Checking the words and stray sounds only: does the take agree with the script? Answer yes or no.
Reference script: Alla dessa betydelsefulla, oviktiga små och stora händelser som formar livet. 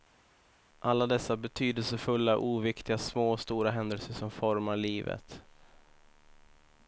yes